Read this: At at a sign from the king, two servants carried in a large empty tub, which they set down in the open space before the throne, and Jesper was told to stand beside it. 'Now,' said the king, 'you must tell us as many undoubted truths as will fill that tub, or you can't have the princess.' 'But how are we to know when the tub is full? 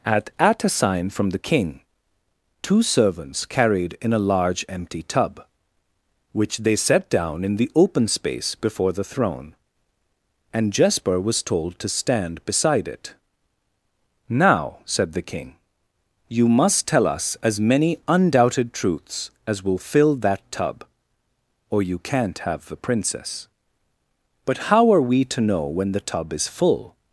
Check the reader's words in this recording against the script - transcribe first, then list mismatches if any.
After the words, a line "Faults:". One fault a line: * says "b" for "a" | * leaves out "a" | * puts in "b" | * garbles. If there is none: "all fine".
At at a sign from the king, two servants carried in a large empty tub, which they set down in the open space before the throne, and Jesper was told to stand beside it. 'Now,' said the king, 'you must tell us as many undoubted truths as will fill that tub, or you can't have the princess.' 'But how are we to know when the tub is full?
Faults:
all fine